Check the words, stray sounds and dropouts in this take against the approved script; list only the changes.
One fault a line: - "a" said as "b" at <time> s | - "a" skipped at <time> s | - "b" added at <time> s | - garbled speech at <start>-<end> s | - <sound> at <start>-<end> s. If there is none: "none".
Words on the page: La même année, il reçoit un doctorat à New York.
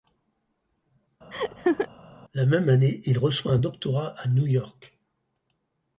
- laugh at 1.3-1.9 s